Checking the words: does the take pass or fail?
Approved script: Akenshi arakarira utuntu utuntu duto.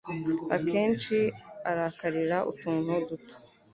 fail